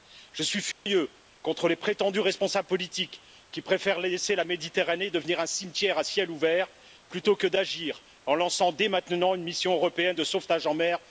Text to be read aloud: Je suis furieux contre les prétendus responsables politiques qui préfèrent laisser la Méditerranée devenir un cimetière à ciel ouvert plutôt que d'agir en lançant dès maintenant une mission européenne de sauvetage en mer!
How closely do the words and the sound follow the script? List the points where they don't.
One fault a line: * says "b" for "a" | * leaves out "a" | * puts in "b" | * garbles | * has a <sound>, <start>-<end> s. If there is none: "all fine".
* has a dropout, 0.7-0.9 s